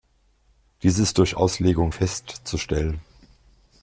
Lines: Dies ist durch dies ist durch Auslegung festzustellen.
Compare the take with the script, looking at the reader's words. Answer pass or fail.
fail